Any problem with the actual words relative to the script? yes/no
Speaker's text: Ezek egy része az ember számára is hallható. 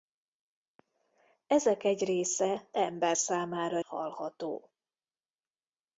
yes